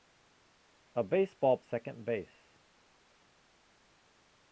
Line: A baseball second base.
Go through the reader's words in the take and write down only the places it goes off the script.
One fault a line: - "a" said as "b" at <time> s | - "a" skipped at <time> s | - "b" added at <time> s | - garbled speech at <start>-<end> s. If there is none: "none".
none